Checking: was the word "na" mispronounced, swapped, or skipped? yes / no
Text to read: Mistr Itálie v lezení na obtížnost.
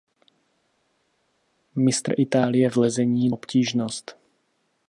yes